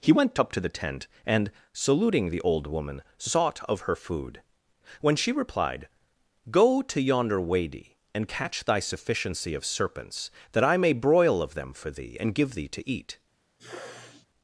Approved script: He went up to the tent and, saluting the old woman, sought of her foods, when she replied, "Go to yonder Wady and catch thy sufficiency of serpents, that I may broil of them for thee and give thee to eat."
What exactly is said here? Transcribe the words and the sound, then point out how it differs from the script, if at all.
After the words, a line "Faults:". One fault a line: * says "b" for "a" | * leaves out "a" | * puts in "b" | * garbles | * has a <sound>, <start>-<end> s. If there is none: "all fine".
He went up to the tent and, saluting the old woman, sought of her food, when she replied, "Go to yonder Wady and catch thy sufficiency of serpents, that I may broil of them for thee and give thee to eat."
Faults:
* says "food" for "foods"
* has a sneeze, 13.6-14.3 s